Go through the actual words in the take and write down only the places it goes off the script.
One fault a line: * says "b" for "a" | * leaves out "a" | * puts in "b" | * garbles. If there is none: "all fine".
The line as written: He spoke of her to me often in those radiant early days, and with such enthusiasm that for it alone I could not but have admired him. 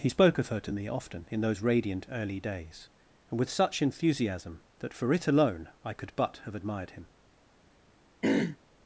* leaves out "not"